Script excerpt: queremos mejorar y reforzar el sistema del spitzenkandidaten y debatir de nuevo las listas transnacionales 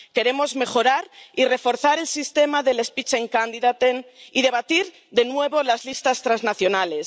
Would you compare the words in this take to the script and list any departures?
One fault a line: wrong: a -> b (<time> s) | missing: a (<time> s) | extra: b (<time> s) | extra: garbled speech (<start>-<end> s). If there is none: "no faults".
no faults